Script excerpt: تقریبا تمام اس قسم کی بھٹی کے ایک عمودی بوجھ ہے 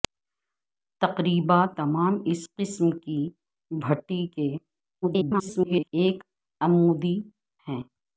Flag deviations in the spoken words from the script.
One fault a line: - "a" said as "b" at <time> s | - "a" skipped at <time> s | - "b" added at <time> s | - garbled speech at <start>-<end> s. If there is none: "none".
- garbled speech at 5.0-5.9 s
- "بوجھ" skipped at 7.2 s